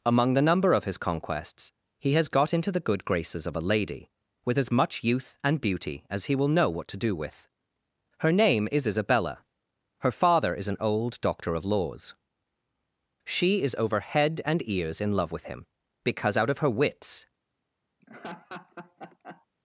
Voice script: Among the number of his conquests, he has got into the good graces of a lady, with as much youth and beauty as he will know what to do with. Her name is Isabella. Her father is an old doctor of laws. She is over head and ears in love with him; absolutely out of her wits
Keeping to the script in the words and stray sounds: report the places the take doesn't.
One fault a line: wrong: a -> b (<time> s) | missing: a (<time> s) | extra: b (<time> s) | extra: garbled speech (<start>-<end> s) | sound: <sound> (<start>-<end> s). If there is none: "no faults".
wrong: absolutely -> because (16.0 s)
sound: laugh (18.0-19.5 s)